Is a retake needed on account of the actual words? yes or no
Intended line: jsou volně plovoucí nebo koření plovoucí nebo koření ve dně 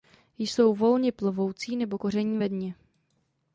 yes